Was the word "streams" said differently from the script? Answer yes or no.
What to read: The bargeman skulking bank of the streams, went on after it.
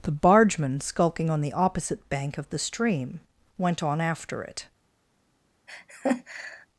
yes